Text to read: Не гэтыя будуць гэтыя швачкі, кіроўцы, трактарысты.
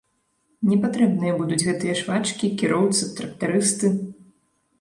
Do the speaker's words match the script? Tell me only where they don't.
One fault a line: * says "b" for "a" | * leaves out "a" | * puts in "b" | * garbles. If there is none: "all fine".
* says "патрэбныя" for "гэтыя"